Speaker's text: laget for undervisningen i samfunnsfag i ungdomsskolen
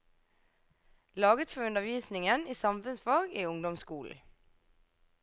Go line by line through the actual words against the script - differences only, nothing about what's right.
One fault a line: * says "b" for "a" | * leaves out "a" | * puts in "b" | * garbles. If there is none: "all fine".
all fine